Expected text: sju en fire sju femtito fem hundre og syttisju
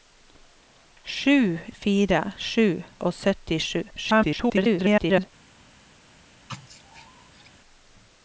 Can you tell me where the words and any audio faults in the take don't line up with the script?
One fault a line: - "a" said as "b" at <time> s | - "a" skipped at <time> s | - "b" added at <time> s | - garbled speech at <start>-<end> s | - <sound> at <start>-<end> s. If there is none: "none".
- "en" skipped at 1.6 s
- "femtito fem hundre" skipped at 2.8 s
- garbled speech at 3.9-5.2 s
- sneeze at 6.5-7.5 s